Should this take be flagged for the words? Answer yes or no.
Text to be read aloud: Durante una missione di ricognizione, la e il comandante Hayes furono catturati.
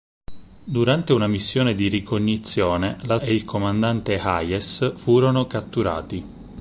no